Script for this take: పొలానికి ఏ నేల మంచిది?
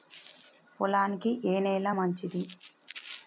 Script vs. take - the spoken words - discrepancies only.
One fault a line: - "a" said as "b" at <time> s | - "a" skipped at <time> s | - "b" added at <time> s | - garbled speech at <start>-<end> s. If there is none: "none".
none